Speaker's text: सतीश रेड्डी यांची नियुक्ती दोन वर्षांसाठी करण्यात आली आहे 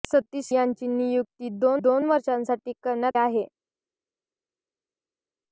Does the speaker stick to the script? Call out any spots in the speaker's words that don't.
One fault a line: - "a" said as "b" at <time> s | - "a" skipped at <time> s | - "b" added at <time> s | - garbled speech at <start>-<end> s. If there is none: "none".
- "रेड्डी" skipped at 0.5 s
- "दोन" added at 1.8 s
- "आली" skipped at 3.2 s